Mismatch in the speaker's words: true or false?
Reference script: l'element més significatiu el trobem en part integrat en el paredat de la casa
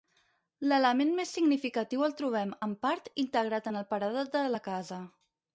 false